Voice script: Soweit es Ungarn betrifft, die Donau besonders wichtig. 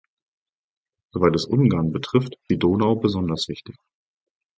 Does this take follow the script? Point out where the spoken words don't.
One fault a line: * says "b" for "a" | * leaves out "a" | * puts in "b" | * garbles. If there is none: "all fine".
all fine